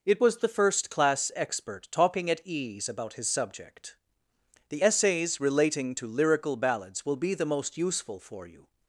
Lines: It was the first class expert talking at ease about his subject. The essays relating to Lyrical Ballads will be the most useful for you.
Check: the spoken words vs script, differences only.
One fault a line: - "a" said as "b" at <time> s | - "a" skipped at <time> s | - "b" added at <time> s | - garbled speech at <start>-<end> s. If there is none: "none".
none